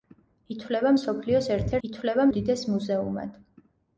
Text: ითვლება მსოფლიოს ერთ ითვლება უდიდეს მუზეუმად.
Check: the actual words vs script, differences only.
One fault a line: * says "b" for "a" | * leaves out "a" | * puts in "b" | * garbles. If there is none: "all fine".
all fine